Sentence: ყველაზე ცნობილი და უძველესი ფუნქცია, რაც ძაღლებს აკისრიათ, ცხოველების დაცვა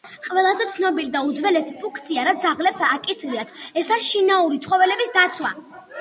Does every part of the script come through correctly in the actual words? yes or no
no